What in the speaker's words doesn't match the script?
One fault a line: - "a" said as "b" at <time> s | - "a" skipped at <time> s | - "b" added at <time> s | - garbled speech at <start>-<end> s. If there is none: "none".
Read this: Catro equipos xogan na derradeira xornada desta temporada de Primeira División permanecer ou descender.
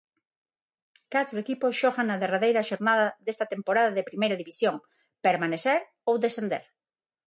none